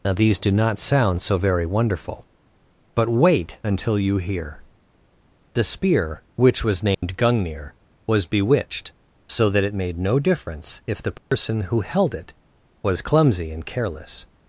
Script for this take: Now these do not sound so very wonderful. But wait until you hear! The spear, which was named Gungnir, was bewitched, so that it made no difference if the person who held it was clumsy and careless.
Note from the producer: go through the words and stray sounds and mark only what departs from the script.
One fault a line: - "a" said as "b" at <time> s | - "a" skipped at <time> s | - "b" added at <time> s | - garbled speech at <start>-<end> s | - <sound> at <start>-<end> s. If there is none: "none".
- dropout at 6.9-7.0 s
- dropout at 11.2-11.3 s